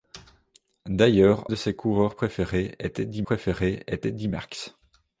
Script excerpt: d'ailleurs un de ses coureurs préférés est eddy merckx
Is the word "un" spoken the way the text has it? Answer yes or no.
no